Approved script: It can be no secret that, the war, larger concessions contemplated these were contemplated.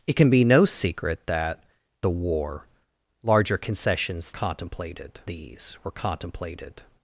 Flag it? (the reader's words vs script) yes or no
no